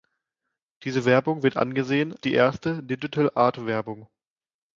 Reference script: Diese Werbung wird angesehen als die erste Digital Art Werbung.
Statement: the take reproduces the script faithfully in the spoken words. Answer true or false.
false